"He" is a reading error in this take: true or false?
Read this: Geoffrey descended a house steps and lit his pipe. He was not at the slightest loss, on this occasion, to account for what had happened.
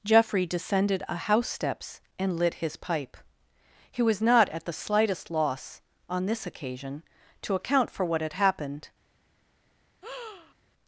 false